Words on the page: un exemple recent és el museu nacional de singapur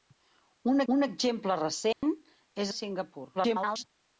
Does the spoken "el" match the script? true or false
false